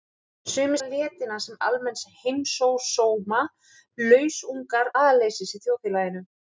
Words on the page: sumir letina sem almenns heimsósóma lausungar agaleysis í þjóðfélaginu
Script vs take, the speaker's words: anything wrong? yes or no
no